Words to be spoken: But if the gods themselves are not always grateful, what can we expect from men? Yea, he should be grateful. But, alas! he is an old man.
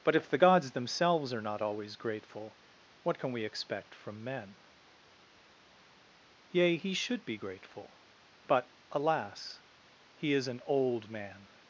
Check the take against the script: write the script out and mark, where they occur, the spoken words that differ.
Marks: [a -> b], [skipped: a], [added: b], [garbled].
But if the gods themselves are not always grateful, what can we expect from men? Yea, he should be grateful. But, alas! he is an old man.